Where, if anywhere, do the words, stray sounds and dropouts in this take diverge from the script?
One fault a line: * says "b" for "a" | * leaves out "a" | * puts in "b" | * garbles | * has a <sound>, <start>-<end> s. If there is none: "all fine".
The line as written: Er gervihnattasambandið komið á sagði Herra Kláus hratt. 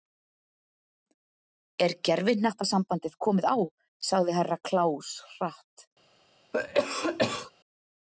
* has a cough, 6.5-7.5 s